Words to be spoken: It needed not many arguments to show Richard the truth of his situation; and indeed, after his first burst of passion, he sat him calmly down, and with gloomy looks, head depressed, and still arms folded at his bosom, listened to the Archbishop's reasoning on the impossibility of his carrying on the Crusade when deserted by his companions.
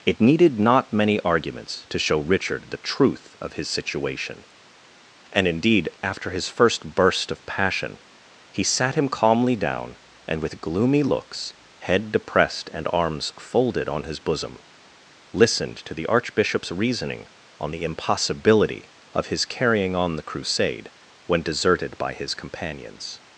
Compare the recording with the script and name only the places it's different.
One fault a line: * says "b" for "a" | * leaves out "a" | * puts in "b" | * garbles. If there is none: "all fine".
* leaves out "still"
* says "on" for "at"